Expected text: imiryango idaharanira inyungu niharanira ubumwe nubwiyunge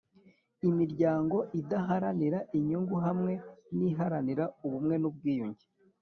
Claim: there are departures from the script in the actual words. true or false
true